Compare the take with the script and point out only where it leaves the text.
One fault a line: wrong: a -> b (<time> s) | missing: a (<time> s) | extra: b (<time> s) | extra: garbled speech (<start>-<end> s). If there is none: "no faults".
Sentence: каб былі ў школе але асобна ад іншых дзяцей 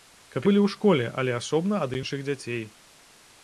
no faults